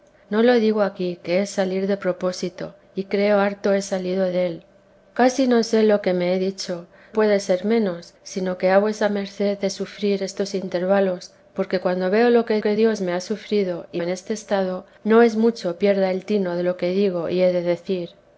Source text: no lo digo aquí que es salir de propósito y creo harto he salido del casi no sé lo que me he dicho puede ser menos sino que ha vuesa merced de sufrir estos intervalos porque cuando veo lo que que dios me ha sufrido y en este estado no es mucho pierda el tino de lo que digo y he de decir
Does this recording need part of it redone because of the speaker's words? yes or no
no